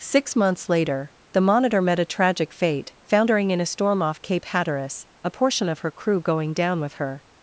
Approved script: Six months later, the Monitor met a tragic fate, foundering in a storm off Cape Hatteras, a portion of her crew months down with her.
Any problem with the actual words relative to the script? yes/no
yes